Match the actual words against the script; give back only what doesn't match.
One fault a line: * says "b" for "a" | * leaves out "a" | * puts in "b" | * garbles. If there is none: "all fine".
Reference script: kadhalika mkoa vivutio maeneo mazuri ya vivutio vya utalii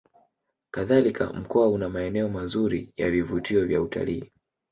* says "una" for "vivutio"